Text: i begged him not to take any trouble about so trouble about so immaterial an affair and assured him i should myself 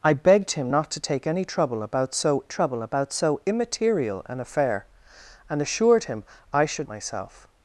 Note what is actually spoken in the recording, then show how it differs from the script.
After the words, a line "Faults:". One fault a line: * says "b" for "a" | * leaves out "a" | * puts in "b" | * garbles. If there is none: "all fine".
i begged him not to take any trouble about so trouble about so immaterial an affair and assured him i should myself
Faults:
all fine